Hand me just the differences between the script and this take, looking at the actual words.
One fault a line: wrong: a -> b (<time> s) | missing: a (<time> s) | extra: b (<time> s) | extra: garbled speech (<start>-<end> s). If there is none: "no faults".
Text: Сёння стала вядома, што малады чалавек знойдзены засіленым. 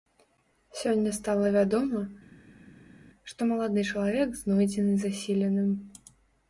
no faults